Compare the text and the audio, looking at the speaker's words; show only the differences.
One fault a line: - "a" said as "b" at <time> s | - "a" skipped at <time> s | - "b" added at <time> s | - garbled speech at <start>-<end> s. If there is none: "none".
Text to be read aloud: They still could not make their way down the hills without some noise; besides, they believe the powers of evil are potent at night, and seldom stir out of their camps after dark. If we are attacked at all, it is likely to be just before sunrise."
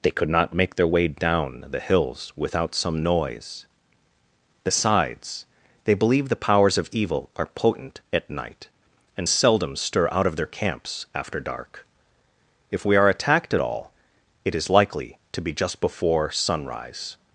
- "still" skipped at 0.1 s